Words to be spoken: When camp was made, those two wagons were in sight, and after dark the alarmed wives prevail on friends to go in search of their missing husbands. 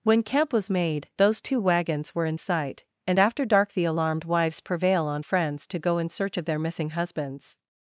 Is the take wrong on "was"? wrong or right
right